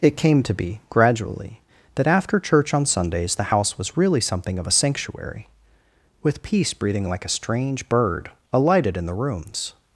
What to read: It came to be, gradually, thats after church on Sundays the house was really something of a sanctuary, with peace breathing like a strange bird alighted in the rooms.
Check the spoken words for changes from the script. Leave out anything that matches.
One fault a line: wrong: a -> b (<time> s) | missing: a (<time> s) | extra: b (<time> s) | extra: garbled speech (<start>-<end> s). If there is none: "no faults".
wrong: thats -> that (2.0 s)